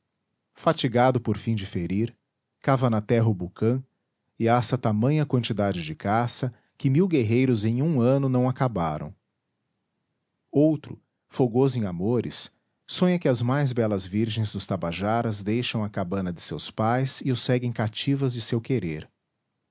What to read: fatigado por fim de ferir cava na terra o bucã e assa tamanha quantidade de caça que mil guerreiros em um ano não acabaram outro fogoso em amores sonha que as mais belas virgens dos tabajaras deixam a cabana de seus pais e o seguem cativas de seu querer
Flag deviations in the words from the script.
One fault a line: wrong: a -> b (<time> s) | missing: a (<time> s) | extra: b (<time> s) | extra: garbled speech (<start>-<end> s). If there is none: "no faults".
no faults